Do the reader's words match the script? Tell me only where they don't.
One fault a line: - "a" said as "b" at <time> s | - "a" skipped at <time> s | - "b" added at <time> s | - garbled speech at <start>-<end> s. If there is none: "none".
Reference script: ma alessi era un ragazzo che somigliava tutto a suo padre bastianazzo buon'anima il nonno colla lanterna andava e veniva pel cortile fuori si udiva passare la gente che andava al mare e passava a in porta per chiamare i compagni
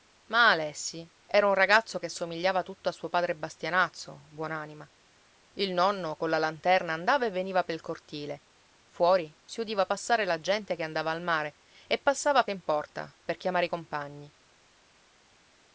none